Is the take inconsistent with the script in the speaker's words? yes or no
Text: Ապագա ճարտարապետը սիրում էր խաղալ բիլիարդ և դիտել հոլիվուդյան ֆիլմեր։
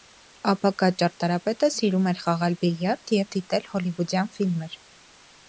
no